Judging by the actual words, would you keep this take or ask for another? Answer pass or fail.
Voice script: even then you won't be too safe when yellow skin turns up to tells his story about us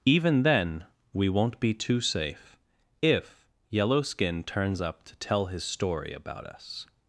fail